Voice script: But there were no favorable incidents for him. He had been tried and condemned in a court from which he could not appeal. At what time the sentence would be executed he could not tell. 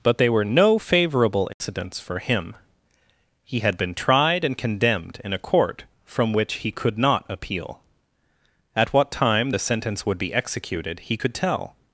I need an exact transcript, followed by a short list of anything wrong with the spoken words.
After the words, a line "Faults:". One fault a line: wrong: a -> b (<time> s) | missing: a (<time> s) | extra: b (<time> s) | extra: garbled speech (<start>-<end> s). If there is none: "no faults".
But they were no favorable incidents for him. He had been tried and condemned in a court from which he could not appeal. At what time the sentence would be executed he could tell.
Faults:
wrong: there -> they (0.2 s)
missing: not (11.3 s)